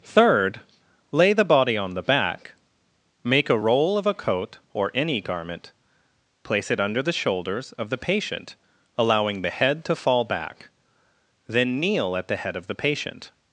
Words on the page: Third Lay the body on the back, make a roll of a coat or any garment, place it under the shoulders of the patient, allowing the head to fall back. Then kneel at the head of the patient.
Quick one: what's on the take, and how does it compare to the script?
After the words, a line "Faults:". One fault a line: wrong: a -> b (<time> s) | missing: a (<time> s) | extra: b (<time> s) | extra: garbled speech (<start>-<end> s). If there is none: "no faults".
Third Lay the body on the back, make a roll of a coat or any garment, place it under the shoulders of the patient, allowing the head to fall back. Then kneel at the head of the patient.
Faults:
no faults